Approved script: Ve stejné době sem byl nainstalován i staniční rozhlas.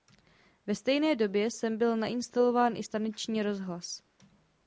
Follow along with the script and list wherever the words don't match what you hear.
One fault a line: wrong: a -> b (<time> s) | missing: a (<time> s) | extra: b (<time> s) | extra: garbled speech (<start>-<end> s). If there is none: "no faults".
no faults